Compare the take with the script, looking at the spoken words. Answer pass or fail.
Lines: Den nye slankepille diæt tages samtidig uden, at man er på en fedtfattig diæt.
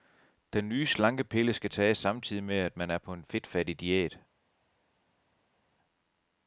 fail